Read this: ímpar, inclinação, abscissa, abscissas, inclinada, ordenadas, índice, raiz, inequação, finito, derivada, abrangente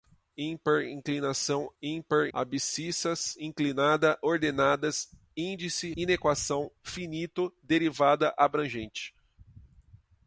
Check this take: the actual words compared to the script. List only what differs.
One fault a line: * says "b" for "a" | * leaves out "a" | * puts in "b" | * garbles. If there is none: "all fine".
* says "ímpar" for "abscissa"
* leaves out "raiz"